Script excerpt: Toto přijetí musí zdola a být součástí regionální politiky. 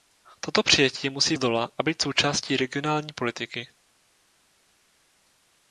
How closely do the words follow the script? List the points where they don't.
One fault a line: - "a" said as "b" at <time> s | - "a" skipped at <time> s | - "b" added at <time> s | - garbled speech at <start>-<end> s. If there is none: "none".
none